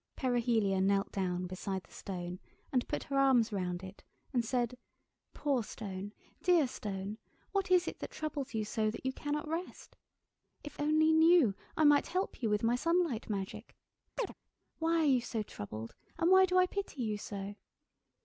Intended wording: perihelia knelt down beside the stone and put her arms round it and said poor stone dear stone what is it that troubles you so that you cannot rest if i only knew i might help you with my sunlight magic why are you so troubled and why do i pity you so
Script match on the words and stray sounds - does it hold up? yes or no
no